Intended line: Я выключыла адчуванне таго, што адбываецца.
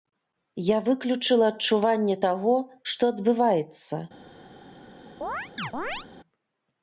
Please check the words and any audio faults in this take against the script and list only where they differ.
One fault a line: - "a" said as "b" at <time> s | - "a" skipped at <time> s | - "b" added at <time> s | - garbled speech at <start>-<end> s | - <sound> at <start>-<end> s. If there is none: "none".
- chirp at 5.2-6.1 s